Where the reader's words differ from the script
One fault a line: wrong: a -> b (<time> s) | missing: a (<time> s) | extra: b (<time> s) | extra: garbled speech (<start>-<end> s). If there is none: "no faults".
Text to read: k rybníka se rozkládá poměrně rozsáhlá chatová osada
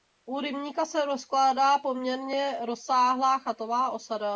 wrong: k -> u (0.2 s)